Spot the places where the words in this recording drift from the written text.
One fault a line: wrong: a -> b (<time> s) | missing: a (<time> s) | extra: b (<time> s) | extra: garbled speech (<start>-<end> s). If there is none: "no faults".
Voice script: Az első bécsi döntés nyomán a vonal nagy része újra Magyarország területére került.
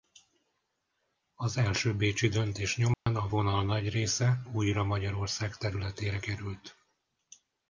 no faults